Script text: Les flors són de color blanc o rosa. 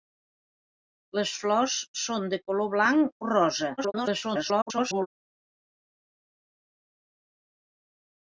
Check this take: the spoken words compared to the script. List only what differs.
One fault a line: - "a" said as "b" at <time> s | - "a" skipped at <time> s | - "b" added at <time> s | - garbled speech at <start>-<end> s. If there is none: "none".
- garbled speech at 3.8-5.1 s